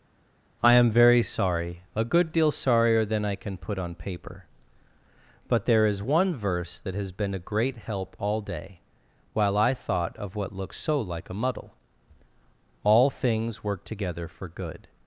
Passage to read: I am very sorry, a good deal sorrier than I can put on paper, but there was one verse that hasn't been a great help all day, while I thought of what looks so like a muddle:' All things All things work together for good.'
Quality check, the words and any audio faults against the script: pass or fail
fail